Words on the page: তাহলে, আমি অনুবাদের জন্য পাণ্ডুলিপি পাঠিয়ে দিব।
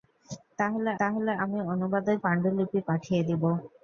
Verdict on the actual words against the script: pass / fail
fail